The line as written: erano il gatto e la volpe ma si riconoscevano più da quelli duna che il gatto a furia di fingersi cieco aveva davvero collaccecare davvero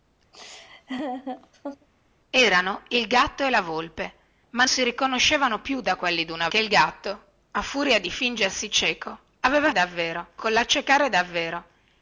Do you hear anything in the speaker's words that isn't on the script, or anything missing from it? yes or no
no